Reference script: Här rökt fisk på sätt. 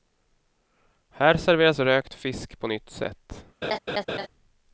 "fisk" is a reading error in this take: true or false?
false